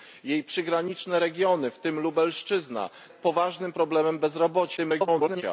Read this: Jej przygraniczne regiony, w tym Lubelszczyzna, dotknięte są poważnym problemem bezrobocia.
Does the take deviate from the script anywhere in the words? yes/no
yes